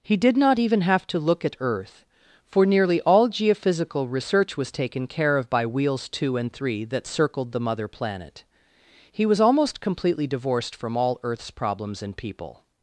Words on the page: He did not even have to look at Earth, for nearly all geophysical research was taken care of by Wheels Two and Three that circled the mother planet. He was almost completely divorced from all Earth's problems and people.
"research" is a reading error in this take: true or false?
false